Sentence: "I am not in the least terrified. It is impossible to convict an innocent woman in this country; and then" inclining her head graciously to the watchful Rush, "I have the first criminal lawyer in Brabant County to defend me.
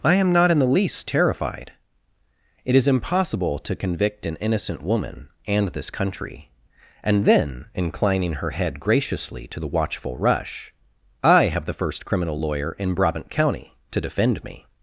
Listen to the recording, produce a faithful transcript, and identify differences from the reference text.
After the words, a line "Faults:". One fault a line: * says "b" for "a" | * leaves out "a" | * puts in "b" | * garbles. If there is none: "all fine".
"I am not in the least terrified. It is impossible to convict an innocent woman and this country; and then" inclining her head graciously to the watchful Rush, "I have the first criminal lawyer in Brabant County to defend me.
Faults:
* says "and" for "in"